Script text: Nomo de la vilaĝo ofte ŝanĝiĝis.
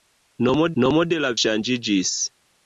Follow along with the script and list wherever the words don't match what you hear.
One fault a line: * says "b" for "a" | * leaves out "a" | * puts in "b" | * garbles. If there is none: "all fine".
* puts in "nomo"
* leaves out "vilaĝo ofte"